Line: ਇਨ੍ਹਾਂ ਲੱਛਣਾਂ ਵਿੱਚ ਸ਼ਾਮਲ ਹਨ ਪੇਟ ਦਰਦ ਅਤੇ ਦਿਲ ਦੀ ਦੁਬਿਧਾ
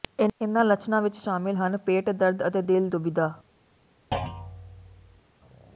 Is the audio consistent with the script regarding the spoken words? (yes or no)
no